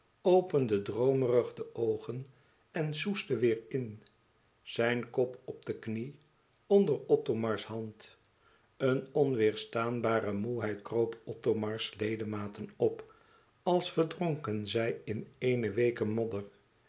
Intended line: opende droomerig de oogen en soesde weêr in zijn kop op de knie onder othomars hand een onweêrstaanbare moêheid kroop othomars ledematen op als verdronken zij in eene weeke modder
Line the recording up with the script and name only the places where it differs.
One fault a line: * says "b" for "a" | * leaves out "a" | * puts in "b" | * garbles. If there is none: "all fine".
all fine